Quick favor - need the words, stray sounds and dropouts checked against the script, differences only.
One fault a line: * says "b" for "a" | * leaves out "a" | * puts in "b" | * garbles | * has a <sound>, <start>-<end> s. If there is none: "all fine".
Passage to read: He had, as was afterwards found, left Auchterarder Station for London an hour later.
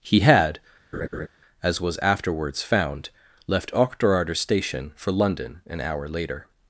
* has a laugh, 0.9-1.3 s